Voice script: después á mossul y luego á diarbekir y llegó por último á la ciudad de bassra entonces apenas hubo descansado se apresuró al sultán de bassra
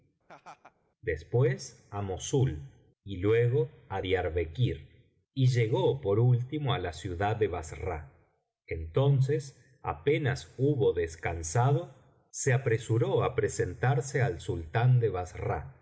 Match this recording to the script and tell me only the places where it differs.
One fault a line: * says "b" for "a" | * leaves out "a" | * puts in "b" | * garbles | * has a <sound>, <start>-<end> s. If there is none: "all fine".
* has a laugh, 0.3-0.7 s
* puts in "á presentarse"